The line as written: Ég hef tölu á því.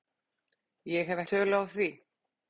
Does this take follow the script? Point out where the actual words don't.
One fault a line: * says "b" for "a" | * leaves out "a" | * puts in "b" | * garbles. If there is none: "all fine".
all fine